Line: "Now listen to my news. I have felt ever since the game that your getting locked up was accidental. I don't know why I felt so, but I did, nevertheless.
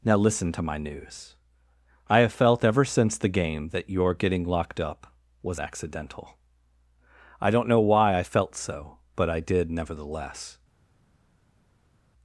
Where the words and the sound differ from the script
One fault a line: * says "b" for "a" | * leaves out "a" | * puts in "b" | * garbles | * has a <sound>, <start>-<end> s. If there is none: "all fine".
all fine